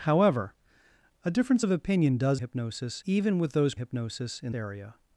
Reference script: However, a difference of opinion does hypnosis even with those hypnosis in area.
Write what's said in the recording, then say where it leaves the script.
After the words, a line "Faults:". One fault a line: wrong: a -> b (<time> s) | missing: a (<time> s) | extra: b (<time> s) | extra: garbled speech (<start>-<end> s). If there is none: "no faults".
However, a difference of opinion does hypnosis even with those hypnosis in area.
Faults:
no faults